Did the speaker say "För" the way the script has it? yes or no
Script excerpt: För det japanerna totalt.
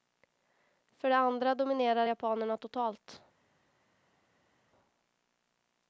yes